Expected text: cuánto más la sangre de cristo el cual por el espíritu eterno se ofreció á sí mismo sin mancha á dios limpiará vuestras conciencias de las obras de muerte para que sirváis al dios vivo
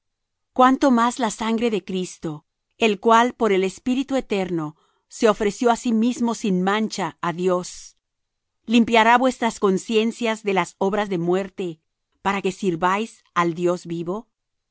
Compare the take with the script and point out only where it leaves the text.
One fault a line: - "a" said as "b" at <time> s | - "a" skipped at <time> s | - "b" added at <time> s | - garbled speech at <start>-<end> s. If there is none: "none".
none